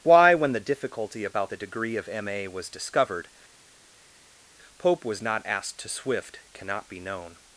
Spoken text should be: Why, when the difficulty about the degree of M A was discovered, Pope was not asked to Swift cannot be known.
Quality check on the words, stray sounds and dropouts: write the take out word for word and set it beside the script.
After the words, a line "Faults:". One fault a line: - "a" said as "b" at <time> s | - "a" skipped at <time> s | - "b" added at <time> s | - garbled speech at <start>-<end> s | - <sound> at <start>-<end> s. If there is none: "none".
Why, when the difficulty about the degree of M A was discovered, Pope was not asked to Swift cannot be known.
Faults:
none